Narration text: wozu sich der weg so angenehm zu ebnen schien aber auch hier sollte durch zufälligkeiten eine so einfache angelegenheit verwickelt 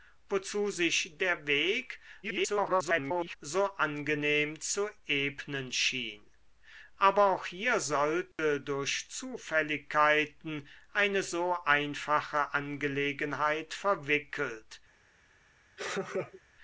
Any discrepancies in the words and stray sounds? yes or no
yes